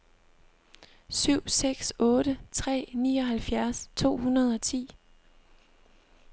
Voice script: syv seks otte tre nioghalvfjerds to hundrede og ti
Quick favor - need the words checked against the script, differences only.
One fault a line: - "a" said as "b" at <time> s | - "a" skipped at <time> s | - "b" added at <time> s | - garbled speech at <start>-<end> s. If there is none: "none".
none